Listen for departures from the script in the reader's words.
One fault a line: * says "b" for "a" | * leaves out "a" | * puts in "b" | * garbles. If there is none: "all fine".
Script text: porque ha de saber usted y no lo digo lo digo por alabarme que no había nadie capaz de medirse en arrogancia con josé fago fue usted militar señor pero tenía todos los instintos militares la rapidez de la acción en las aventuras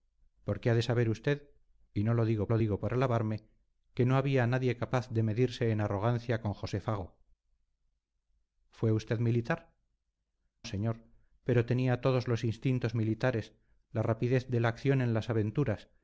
all fine